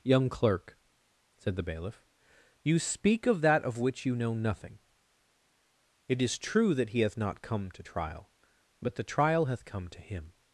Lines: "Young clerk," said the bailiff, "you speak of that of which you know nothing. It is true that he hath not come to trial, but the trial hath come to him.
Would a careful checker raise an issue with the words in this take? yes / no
no